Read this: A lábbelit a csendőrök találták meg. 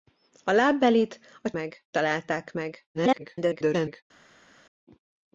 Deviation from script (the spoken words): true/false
true